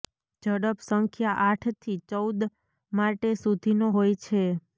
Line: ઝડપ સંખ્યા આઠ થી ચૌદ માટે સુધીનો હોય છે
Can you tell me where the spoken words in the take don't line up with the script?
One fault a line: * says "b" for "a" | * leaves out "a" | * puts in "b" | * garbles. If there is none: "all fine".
all fine